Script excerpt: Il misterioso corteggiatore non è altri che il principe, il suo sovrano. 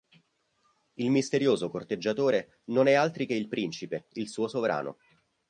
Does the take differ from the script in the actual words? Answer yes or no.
no